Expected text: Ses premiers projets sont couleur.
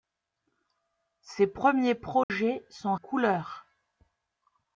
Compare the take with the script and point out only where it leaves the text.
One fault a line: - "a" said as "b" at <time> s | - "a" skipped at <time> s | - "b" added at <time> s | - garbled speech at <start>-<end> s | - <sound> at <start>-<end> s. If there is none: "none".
- dropout at 2.2-2.3 s